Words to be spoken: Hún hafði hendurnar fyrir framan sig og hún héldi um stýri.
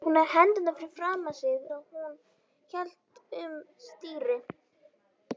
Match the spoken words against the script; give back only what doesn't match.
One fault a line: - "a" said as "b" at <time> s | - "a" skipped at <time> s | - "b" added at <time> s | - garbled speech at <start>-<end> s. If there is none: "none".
none